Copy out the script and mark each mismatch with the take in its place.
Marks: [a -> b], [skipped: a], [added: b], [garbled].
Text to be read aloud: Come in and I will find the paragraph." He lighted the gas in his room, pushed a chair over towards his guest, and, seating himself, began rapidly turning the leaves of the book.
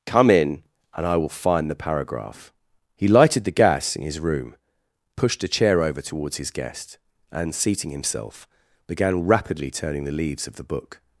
Come in and I will find the paragraph." He lighted the gas in his room, pushed a chair over towards his guest, and, seating himself, began rapidly turning the leaves of the book.